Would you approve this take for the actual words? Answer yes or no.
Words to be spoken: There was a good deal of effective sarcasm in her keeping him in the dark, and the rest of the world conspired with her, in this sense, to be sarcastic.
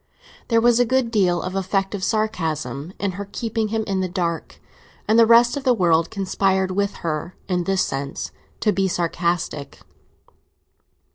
yes